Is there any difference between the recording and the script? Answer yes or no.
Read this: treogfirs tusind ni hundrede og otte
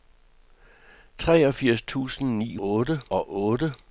yes